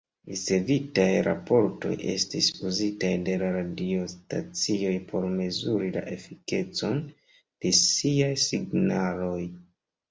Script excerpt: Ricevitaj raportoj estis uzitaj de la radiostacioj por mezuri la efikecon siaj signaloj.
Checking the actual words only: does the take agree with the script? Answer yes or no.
no